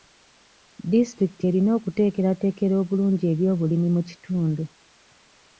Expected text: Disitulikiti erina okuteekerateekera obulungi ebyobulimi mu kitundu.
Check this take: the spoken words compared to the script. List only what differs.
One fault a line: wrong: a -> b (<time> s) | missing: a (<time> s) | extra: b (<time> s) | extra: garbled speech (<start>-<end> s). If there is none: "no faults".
no faults